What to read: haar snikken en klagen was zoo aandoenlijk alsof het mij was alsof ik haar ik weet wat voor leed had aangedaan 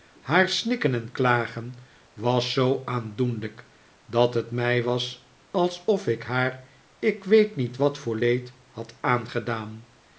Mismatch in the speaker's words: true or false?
true